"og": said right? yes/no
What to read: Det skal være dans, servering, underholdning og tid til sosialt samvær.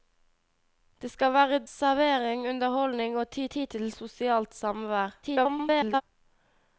yes